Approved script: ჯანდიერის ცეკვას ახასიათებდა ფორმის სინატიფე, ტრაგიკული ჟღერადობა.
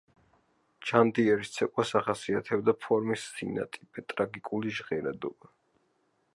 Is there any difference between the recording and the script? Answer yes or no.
no